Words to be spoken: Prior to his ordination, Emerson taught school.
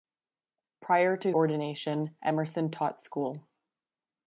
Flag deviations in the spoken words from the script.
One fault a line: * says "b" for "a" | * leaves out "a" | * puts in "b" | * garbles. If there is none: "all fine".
* leaves out "his"